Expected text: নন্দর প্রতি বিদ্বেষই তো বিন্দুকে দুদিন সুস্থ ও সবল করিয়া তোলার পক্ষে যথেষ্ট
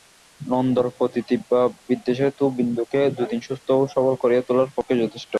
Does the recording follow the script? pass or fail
fail